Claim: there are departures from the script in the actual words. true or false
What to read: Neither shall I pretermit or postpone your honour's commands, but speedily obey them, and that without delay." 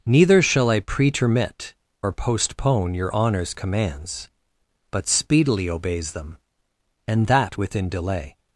true